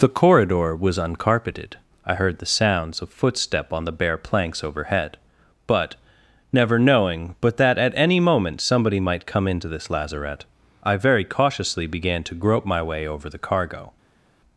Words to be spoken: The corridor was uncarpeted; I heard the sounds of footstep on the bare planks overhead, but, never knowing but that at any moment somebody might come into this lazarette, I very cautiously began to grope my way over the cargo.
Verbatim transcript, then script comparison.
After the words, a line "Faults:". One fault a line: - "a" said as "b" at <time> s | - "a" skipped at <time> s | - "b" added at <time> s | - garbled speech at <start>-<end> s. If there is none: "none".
The corridor was uncarpeted; I heard the sounds of footstep on the bare planks overhead, but, never knowing but that at any moment somebody might come into this lazarette, I very cautiously began to grope my way over the cargo.
Faults:
none